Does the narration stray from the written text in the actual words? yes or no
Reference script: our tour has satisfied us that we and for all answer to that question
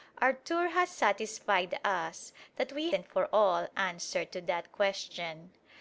no